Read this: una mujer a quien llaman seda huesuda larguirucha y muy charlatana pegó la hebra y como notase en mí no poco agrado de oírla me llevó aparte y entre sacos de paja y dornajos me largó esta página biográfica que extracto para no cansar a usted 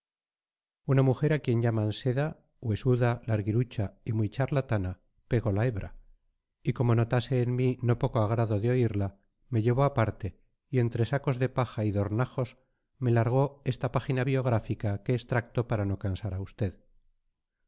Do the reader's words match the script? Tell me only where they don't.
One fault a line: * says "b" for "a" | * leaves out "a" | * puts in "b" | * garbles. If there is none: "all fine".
all fine